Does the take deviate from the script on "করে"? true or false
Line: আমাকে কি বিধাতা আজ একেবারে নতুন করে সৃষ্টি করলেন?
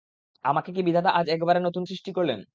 true